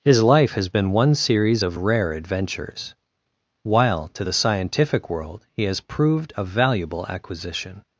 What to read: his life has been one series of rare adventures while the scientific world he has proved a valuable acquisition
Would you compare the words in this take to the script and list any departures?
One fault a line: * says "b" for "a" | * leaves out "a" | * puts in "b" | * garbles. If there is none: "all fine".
* puts in "to"